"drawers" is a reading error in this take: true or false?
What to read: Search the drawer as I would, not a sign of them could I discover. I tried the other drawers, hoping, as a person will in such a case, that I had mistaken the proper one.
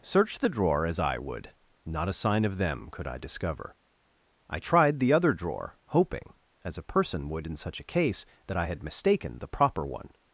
true